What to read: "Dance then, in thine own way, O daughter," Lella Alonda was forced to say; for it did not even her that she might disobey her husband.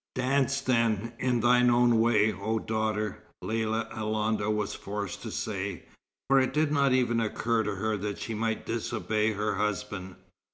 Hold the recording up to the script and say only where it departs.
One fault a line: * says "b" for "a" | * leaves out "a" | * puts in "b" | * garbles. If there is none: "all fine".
* puts in "occur to"